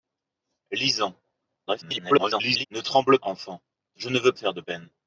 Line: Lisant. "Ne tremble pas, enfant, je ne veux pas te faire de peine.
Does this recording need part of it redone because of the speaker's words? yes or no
yes